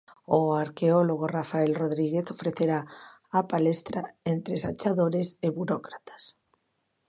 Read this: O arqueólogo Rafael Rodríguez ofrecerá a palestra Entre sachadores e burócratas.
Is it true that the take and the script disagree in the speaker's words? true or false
false